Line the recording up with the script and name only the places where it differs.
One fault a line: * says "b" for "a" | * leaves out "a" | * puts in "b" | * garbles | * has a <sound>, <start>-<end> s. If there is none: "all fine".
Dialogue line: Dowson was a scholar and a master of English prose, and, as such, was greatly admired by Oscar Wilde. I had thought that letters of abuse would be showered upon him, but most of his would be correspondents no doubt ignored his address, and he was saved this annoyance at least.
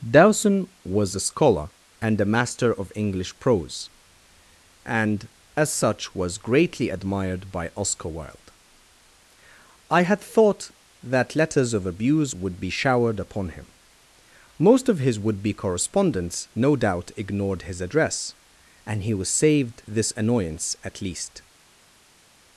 * leaves out "but"